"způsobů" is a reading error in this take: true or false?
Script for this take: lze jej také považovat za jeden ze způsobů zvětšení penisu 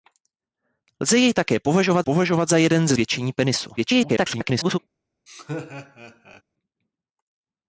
true